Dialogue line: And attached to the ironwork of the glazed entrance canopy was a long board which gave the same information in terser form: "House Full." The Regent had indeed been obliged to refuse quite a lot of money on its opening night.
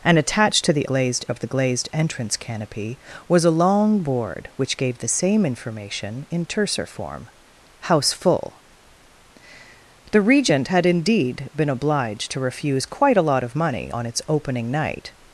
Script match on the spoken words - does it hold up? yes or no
no